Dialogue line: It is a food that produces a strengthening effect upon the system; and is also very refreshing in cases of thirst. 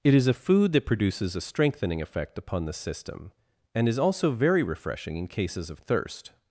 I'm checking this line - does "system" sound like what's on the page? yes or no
yes